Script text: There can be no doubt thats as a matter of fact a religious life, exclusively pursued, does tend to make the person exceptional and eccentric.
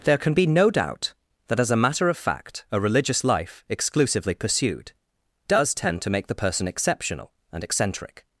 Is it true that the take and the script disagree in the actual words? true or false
true